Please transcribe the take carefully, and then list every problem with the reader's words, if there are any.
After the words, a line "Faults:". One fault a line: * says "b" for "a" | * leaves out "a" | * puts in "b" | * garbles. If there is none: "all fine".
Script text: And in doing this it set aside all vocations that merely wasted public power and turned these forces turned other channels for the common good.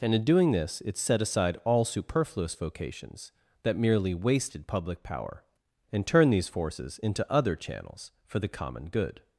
And in doing this it set aside all superfluous vocations that merely wasted public power and turned these forces into other channels for the common good.
Faults:
* puts in "superfluous"
* says "into" for "turned"